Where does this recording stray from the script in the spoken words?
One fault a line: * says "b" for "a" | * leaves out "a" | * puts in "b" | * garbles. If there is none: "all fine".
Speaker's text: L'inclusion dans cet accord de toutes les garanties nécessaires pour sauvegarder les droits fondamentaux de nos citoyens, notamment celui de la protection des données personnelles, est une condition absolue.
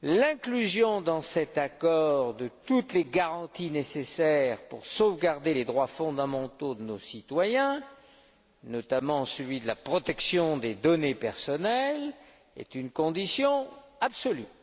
all fine